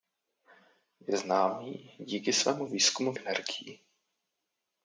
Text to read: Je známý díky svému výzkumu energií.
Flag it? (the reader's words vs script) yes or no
no